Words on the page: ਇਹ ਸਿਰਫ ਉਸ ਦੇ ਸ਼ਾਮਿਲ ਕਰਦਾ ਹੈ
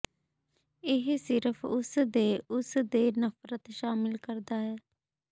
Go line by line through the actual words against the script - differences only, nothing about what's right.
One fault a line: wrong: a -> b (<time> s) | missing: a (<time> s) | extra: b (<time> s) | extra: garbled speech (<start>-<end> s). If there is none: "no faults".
extra: ਉਸ ਦੇ ਨਫ਼ਰਤ (2.5 s)